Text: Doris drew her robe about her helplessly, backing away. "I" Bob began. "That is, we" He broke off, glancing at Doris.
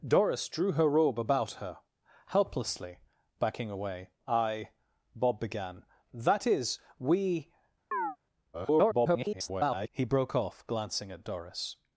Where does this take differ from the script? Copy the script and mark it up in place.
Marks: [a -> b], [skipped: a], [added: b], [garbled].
Doris drew her robe about her helplessly, backing away. "I" Bob began. "That is, we" [garbled] He broke off, glancing at Doris.